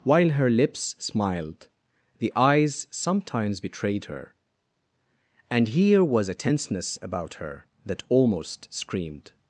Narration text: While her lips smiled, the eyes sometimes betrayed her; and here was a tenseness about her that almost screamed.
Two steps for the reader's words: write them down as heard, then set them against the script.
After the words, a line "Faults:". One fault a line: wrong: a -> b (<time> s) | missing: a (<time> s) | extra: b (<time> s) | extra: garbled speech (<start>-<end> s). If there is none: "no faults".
While her lips smiled, the eyes sometimes betrayed her; and here was a tenseness about her that almost screamed.
Faults:
no faults